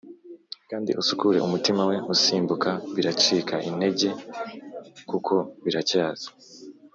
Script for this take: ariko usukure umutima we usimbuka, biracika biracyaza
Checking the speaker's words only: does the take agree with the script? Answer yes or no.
no